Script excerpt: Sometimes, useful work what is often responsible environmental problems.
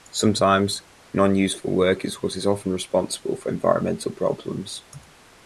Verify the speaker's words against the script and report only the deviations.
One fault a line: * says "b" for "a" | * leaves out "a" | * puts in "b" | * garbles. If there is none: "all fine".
* puts in "non"
* puts in "is"
* puts in "for"